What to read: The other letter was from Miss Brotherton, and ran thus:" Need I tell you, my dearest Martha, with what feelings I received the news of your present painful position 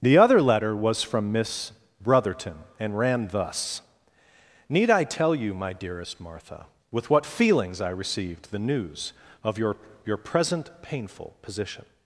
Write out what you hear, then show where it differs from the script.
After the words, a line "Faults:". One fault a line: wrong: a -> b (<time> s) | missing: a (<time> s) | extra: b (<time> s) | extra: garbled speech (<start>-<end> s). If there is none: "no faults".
The other letter was from Miss Brotherton, and ran thus:" Need I tell you, my dearest Martha, with what feelings I received the news of your your present painful position
Faults:
extra: your (10.0 s)